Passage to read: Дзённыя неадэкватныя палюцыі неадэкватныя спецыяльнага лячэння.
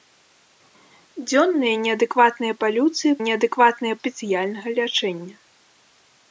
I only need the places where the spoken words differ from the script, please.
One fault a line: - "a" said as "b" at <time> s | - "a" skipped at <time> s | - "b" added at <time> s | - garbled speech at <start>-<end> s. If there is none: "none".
none